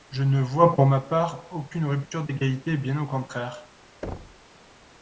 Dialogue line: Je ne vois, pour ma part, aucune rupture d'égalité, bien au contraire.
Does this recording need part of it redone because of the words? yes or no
no